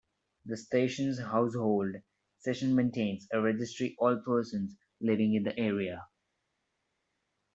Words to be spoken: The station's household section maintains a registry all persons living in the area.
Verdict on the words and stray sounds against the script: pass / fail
pass